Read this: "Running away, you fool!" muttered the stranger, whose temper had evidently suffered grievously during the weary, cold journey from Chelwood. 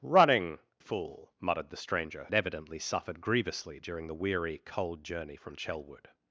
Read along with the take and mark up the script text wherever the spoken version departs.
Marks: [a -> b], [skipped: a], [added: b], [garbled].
"Running [skipped: away, you] fool!" muttered the stranger, [skipped: whose temper had] evidently suffered grievously during the weary, cold journey from Chelwood.